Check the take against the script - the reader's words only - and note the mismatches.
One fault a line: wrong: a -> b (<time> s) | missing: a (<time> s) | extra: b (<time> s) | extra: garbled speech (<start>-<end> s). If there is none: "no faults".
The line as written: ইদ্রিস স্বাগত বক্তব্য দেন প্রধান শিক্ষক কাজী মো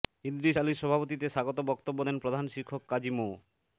extra: আলীর সভাপতিত্বে (0.6 s)